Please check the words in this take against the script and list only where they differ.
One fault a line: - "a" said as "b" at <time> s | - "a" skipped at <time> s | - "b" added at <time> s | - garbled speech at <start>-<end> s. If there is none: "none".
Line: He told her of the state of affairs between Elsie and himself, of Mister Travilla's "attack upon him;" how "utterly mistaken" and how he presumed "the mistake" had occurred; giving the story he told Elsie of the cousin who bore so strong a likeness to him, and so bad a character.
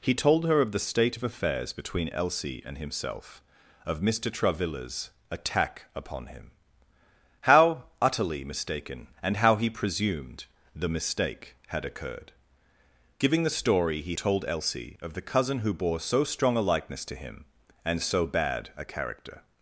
none